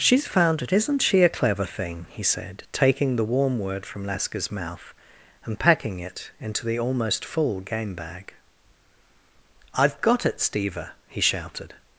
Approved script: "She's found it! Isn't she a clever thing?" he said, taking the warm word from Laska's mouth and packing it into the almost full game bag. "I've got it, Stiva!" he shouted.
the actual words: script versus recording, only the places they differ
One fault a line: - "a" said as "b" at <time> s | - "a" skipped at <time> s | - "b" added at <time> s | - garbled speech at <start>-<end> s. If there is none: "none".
none